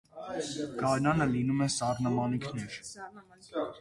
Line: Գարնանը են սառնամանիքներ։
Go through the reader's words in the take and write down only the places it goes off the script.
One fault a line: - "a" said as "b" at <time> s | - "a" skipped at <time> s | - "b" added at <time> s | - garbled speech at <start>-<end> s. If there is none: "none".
- "լինում" added at 1.3 s